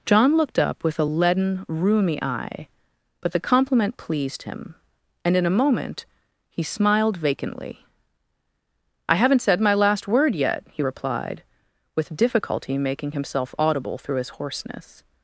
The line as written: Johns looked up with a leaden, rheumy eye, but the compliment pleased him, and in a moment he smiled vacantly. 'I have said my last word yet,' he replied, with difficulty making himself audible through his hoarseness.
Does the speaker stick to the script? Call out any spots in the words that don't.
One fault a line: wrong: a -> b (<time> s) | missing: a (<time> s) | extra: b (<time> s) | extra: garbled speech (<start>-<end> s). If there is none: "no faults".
wrong: Johns -> John (0.1 s)
wrong: have -> haven't (9.2 s)